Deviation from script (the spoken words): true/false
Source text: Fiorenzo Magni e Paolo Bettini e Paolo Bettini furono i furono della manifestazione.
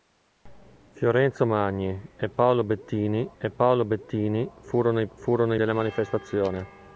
false